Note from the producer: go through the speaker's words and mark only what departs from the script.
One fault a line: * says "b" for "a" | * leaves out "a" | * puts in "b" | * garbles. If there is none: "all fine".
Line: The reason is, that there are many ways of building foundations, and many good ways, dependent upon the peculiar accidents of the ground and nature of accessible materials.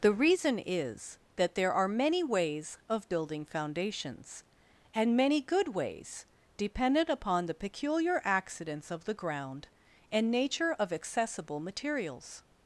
all fine